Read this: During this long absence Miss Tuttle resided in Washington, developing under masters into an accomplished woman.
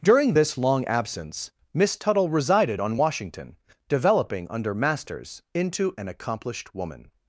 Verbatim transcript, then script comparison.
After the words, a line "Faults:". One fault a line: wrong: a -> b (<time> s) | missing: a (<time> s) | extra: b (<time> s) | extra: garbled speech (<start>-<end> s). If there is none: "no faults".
During this long absence Miss Tuttle resided on Washington, developing under masters into an accomplished woman.
Faults:
wrong: in -> on (2.8 s)